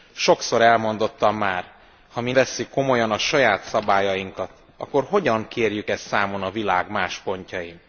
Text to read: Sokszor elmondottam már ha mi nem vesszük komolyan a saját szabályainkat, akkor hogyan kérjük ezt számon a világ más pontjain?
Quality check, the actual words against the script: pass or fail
fail